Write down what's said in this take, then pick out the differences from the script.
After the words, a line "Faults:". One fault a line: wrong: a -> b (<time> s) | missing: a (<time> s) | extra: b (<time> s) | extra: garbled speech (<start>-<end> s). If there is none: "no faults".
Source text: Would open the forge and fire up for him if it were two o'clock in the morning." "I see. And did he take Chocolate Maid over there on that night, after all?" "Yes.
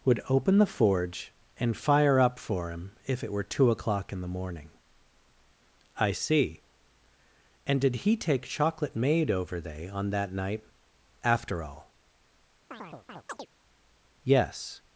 Would open the forge and fire up for him if it were two o'clock in the morning." "I see. And did he take Chocolate Maid over they on that night, after all?" "Yes.
Faults:
wrong: there -> they (9.6 s)